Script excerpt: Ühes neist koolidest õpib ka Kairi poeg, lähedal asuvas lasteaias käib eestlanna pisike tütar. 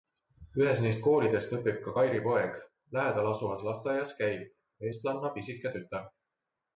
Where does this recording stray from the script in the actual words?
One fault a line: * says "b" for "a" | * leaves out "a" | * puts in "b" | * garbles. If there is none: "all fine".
all fine